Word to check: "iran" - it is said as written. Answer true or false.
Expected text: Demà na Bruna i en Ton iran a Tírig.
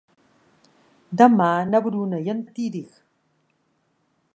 false